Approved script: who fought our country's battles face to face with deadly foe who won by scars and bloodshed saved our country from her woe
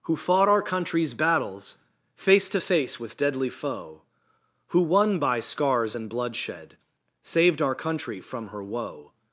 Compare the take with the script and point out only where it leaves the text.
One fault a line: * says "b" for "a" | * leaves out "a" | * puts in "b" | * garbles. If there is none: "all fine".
all fine